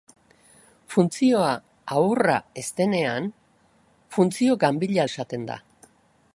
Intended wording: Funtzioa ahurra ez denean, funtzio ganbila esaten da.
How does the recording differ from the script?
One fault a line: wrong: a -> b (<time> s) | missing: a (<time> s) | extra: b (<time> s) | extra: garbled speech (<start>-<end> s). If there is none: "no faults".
no faults